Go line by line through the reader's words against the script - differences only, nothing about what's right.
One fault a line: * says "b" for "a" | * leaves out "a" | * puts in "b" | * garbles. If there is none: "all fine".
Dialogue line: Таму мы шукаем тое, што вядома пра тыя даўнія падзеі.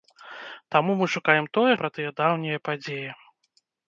* leaves out "што вядома"